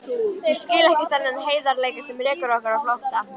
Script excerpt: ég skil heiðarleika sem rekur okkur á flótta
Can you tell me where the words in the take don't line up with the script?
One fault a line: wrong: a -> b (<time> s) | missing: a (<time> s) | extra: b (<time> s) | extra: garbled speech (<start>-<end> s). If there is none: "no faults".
extra: ekki þennan (0.9 s)